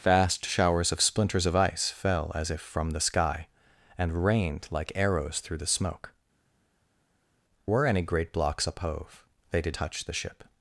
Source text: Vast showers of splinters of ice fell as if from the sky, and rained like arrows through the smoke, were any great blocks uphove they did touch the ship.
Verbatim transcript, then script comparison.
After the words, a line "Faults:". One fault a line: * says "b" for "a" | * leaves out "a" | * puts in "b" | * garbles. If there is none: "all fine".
Vast showers of splinters of ice fell as if from the sky, and rained like arrows through the smoke, were any great blocks uphove they did touch the ship.
Faults:
all fine